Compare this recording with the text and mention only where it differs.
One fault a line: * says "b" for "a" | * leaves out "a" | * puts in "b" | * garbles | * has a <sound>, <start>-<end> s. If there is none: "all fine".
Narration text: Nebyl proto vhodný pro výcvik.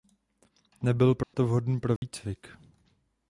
* has a dropout, 1.2-1.3 s
* has a dropout, 2.0-2.0 s